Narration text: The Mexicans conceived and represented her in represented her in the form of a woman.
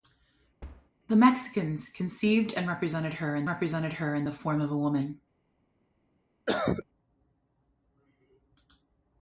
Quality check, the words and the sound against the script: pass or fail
fail